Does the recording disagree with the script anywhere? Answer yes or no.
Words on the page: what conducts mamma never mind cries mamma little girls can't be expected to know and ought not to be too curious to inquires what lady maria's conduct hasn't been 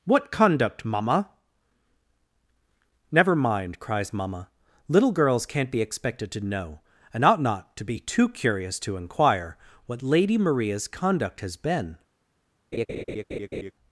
yes